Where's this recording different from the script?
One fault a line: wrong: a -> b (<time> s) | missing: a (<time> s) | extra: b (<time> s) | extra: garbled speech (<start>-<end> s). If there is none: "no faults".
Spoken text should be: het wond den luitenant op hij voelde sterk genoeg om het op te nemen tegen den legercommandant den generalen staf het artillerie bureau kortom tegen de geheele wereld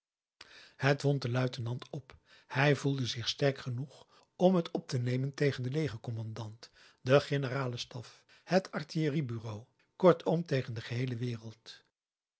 extra: zich (3.0 s)